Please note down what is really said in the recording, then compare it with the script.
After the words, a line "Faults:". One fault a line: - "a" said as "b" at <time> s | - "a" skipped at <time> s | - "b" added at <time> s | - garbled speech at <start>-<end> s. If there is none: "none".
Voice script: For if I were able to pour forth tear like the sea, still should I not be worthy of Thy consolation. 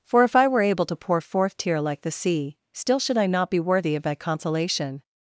For if I were able to pour forth tear like the sea, still should I not be worthy of Thy consolation.
Faults:
none